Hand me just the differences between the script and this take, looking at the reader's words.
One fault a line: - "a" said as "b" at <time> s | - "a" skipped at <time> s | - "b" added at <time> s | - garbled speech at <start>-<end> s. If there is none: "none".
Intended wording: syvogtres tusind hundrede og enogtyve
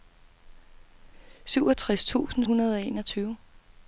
none